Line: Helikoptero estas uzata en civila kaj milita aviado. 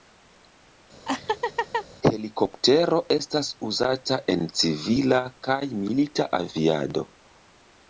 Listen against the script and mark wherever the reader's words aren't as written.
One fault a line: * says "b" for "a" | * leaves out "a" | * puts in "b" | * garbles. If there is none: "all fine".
all fine